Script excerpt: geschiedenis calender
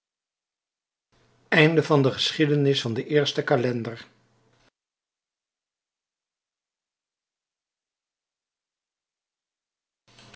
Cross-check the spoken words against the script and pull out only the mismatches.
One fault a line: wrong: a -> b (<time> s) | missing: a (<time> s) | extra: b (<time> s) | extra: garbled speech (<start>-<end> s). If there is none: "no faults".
extra: van den eersten (2.8 s)